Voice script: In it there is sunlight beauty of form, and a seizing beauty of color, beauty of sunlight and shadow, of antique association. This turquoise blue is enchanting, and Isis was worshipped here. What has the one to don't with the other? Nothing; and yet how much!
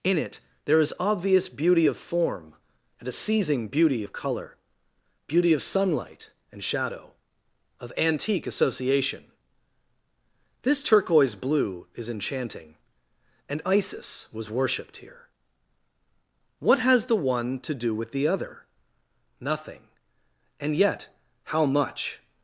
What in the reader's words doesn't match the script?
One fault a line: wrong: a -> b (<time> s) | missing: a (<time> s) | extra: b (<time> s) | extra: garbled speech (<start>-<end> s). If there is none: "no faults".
wrong: sunlight -> obvious (1.0 s)
wrong: don't -> do (17.7 s)